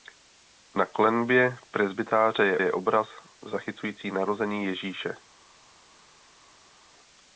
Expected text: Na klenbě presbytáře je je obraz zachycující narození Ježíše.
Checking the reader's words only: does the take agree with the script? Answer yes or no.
yes